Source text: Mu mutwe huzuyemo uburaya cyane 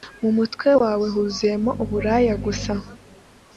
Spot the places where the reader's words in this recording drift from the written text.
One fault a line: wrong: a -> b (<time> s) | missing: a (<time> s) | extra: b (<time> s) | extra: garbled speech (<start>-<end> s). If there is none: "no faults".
extra: wawe (0.8 s)
wrong: cyane -> gusa (2.4 s)